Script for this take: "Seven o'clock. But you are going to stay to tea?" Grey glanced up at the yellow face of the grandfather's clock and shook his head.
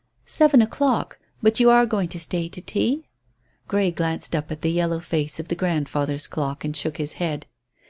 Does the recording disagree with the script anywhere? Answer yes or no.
no